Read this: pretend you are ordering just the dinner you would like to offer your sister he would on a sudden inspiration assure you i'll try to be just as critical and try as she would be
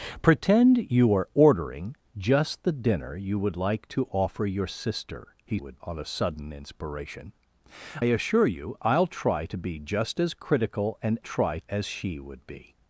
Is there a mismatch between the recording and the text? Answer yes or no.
no